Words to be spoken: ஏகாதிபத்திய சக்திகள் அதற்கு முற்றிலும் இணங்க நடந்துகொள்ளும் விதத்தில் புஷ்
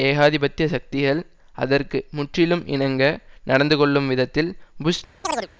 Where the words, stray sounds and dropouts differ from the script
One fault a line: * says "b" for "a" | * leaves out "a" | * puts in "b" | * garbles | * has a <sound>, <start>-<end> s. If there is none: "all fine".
* has a chirp, 5.2-5.5 s